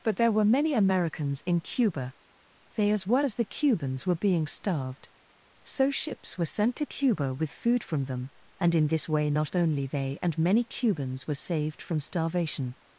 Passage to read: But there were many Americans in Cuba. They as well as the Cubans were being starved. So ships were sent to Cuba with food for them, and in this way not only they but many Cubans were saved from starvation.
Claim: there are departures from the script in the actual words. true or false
true